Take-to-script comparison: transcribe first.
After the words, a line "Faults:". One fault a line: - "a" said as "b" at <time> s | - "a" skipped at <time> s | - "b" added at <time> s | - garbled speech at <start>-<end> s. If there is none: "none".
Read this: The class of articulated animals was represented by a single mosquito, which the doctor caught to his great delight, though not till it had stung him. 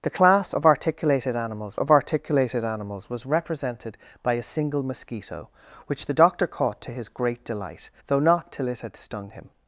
The class of articulated animals of articulated animals was represented by a single mosquito, which the doctor caught to his great delight, though not till it had stung him.
Faults:
- "of articulated animals" added at 1.8 s